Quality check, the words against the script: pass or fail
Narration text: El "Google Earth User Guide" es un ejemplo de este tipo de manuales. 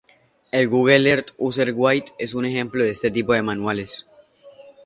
pass